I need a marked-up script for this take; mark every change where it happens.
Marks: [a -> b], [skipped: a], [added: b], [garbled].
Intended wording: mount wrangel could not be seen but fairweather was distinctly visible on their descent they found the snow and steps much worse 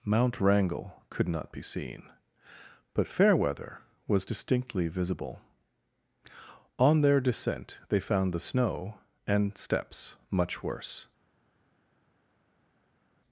mount wrangel could not be seen but fairweather was distinctly visible on their descent they found the snow and steps much worse